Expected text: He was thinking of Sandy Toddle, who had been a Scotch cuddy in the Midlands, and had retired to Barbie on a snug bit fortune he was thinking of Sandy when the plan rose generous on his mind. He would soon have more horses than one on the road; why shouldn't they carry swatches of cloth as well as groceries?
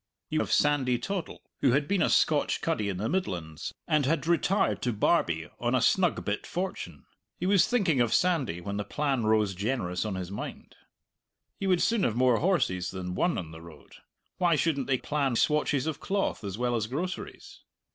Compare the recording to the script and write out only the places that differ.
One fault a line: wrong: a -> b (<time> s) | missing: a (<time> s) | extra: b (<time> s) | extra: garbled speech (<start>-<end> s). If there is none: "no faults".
missing: was thinking (0.4 s)
wrong: carry -> plan (15.0 s)